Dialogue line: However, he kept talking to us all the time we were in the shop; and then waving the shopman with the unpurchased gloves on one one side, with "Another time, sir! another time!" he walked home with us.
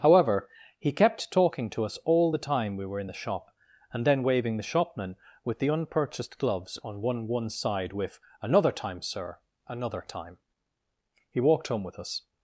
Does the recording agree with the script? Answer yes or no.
yes